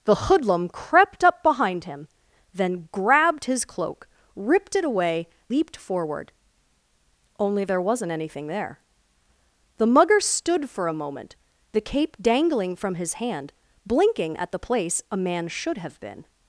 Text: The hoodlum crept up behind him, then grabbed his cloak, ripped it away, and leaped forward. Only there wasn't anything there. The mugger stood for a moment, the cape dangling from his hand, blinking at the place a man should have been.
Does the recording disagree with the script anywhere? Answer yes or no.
yes